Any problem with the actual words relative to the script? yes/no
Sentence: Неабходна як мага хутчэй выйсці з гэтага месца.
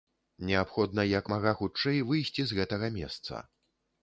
no